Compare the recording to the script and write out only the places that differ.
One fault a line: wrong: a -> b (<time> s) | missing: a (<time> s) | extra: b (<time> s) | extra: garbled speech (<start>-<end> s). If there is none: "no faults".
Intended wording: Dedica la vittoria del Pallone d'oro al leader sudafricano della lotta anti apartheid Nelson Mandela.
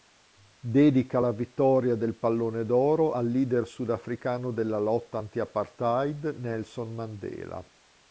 no faults